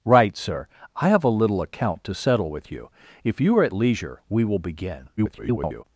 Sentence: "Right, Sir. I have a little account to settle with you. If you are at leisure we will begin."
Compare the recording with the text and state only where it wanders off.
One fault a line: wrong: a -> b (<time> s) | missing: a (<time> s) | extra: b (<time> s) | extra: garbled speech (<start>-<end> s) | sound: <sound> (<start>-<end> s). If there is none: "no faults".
extra: garbled speech (5.2-5.8 s)